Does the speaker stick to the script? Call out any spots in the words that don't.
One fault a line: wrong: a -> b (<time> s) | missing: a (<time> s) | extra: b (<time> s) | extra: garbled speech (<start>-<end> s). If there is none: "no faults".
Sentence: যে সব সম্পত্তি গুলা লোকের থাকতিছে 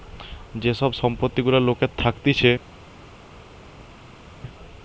no faults